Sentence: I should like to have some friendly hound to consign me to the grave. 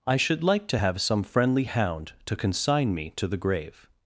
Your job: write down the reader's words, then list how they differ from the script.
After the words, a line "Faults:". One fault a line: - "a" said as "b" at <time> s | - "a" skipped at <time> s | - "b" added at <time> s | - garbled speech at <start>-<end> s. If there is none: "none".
I should like to have some friendly hound to consign me to the grave.
Faults:
none